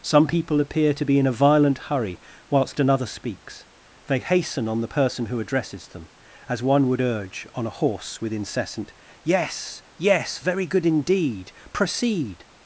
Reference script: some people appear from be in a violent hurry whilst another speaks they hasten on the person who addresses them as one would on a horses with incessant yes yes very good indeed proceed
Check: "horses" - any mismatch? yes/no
yes